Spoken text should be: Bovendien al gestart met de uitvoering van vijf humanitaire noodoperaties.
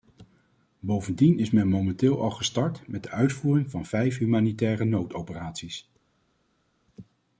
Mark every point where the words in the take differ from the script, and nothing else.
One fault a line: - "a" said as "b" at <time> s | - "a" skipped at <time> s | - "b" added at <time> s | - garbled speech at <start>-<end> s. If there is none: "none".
- "is men momenteel" added at 1.4 s